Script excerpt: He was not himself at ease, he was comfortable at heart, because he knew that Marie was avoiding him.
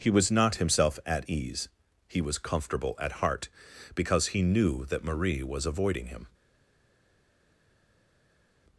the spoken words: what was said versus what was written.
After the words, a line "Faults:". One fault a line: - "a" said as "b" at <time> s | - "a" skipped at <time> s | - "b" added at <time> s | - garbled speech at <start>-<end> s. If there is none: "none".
He was not himself at ease, he was comfortable at heart, because he knew that Marie was avoiding him.
Faults:
none